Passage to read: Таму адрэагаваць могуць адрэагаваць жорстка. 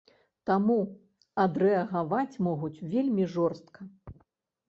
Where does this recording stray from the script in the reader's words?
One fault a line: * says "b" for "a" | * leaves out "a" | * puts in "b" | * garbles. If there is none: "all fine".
* says "вельмі" for "адрэагаваць"